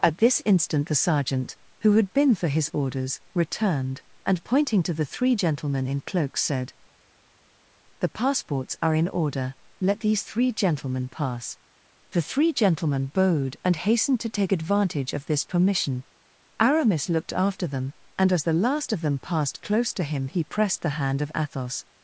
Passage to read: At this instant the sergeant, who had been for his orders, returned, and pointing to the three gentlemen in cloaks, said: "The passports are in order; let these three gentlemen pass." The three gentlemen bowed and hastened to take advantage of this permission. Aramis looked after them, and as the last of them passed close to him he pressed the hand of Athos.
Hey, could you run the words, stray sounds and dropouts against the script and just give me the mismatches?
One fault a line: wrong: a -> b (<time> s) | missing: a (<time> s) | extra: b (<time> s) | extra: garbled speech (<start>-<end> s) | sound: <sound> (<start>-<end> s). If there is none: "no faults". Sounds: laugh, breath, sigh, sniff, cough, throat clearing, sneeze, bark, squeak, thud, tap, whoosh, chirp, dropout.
no faults